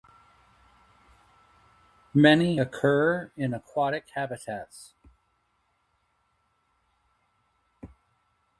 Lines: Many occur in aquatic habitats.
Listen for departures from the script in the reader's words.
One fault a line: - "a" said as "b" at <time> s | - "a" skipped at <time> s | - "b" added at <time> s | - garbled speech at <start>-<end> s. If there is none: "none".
none